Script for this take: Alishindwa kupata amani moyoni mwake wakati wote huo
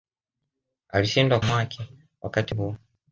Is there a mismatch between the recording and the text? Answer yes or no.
yes